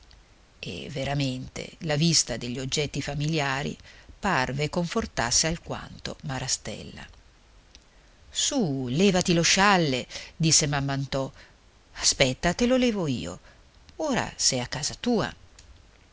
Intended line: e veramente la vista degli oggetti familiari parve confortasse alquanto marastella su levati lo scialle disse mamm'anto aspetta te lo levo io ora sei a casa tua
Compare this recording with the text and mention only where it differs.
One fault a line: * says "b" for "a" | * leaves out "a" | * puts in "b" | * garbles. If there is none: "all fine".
all fine